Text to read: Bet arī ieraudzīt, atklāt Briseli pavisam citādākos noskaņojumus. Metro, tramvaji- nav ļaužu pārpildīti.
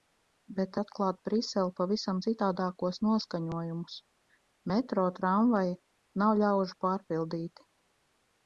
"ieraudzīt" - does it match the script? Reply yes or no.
no